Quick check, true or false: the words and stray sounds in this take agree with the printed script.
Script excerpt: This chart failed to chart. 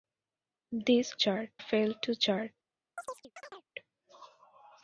false